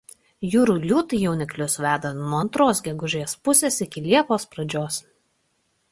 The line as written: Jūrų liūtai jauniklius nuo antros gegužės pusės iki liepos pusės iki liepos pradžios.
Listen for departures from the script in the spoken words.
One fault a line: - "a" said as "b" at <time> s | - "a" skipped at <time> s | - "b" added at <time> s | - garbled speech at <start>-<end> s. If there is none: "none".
- "veda" added at 1.9 s
- "pusės iki liepos" skipped at 4.5 s